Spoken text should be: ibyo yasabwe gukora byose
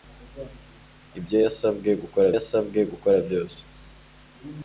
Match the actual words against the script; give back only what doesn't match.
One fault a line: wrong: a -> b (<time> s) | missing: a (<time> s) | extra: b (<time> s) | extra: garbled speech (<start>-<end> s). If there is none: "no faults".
extra: yasabwe gukora (2.3 s)